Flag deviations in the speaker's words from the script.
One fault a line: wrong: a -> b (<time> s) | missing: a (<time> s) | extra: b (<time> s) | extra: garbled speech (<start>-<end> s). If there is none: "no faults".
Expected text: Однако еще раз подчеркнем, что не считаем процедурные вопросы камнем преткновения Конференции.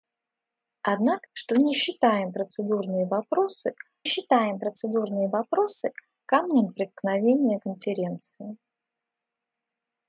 wrong: еще раз подчеркнем что не -> что не считаем процедурные вопросы (1.3 s)